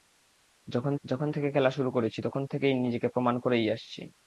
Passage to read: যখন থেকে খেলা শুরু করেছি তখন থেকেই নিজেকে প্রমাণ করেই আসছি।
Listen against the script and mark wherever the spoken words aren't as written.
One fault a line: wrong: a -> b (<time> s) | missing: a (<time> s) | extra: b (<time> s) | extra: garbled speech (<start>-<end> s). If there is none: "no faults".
extra: যখন (1.0 s)